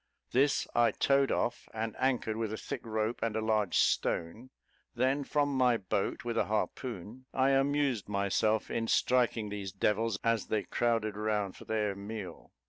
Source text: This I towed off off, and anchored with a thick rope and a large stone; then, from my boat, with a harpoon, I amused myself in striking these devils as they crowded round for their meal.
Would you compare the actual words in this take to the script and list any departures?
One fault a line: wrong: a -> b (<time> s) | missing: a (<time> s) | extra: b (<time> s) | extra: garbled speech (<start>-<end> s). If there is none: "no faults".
missing: off (1.7 s)